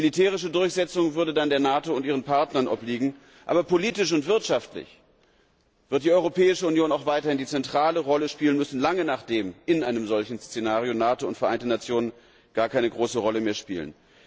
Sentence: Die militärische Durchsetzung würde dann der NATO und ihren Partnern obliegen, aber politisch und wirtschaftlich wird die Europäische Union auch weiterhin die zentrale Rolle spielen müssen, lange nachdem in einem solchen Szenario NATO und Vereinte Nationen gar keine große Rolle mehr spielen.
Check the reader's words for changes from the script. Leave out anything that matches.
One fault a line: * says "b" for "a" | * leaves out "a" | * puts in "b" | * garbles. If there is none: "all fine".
all fine